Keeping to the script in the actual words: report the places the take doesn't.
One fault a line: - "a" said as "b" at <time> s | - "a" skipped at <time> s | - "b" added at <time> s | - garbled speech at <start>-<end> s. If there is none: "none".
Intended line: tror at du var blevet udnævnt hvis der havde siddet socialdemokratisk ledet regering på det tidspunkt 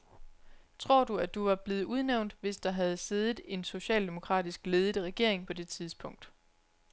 - "du" added at 1.0 s
- "en" added at 3.4 s